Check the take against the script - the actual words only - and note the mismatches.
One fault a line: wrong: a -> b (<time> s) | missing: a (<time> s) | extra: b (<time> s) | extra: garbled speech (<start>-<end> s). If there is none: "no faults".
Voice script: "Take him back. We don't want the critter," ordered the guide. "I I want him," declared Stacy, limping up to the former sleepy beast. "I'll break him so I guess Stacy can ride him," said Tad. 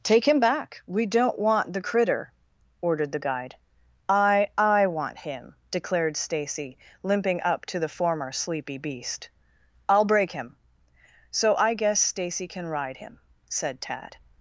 no faults